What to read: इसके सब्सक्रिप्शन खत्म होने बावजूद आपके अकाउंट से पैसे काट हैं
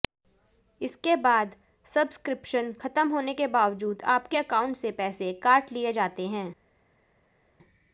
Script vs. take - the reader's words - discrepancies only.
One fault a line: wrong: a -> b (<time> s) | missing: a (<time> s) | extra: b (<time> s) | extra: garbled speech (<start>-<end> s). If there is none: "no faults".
extra: बाद (1.1 s)
extra: के (3.3 s)
extra: लिए जाते (5.7 s)